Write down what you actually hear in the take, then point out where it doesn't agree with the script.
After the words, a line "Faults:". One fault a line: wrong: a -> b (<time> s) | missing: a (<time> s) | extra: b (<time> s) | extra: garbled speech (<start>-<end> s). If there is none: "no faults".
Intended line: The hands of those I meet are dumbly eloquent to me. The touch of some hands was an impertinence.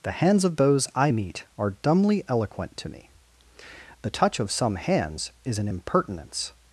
The hands of those I meet are dumbly eloquent to me. The touch of some hands is an impertinence.
Faults:
wrong: was -> is (5.4 s)